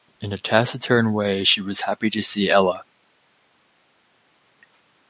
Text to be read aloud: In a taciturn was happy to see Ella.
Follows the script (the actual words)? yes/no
no